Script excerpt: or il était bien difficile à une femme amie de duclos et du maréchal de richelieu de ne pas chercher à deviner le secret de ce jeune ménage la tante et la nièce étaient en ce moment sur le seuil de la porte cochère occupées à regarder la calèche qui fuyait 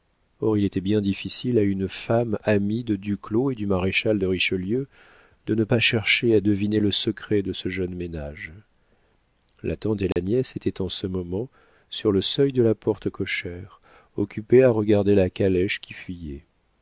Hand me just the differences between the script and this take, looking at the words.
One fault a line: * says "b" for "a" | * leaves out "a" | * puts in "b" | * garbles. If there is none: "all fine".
all fine